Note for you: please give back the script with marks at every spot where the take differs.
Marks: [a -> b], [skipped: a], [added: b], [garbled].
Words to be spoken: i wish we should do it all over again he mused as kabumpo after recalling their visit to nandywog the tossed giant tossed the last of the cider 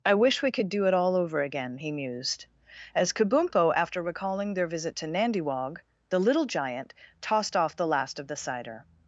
i wish we [should -> could] do it all over again he mused as kabumpo after recalling their visit to nandywog the [tossed -> little] giant tossed [added: off] the last of the cider